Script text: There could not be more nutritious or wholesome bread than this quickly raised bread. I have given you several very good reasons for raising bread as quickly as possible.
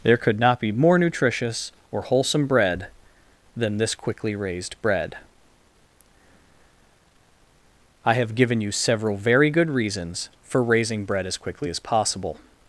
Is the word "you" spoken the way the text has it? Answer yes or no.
yes